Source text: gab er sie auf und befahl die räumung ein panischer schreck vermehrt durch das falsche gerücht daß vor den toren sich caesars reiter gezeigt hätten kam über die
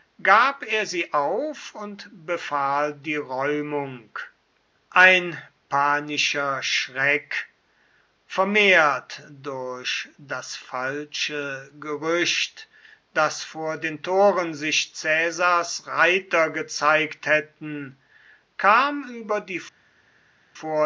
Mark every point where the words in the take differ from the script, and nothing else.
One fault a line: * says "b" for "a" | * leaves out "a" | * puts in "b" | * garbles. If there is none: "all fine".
all fine